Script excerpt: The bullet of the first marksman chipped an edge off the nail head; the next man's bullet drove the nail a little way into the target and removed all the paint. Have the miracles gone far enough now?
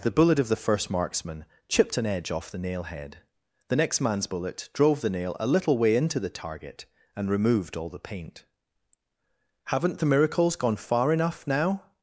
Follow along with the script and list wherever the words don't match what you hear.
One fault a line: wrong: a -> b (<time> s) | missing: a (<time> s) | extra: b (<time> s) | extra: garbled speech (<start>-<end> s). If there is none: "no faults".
wrong: Have -> Haven't (9.7 s)